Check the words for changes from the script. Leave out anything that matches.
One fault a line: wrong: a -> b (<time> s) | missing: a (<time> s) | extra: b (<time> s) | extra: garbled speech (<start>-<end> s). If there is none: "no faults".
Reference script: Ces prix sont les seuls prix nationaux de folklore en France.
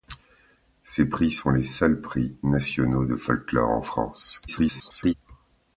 extra: garbled speech (4.5-5.1 s)